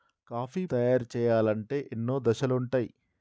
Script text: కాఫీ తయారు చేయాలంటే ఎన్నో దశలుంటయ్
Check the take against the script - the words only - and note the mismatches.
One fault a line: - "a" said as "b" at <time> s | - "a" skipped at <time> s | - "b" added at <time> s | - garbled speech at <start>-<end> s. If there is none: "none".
none